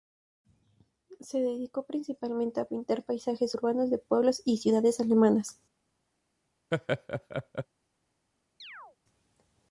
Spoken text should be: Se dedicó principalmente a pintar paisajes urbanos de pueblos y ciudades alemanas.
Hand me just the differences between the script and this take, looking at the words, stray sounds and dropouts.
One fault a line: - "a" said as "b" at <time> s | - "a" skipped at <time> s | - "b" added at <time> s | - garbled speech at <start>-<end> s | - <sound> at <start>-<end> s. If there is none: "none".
- laugh at 6.7-7.7 s
- chirp at 8.6-9.0 s